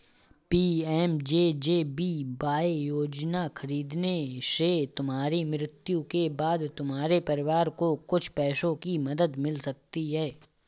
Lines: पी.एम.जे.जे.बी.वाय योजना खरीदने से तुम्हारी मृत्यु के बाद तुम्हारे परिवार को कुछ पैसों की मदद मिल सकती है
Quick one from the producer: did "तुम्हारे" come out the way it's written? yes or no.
yes